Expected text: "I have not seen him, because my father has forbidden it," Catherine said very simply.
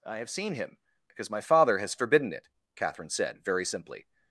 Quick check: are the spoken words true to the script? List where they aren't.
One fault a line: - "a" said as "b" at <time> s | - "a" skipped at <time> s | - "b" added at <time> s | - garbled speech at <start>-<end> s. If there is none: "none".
- "not" skipped at 0.3 s